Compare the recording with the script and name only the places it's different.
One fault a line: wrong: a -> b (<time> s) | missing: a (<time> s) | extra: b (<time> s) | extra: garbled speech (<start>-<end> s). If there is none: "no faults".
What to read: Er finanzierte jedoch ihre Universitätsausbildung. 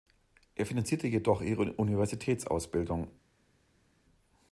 no faults